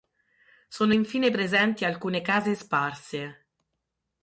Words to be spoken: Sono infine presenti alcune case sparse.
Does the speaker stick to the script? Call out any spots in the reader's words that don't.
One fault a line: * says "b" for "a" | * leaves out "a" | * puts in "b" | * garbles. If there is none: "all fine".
all fine